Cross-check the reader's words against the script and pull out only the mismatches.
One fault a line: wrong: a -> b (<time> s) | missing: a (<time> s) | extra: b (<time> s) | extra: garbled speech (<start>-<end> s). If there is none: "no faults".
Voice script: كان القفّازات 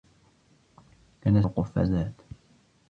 no faults